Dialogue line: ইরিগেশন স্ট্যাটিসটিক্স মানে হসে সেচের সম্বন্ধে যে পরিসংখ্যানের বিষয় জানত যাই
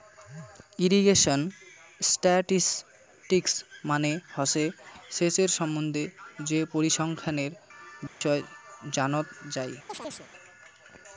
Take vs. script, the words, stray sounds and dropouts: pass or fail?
fail